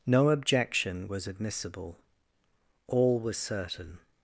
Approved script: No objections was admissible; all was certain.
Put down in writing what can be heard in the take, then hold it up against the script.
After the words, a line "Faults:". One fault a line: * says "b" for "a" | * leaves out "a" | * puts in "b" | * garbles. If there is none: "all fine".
No objection was admissible; all was certain.
Faults:
* says "objection" for "objections"